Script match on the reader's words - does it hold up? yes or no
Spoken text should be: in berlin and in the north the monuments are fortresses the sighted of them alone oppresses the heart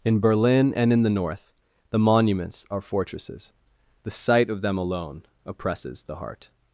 no